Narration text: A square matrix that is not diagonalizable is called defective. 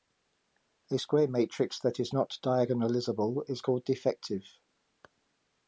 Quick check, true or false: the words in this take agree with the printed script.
true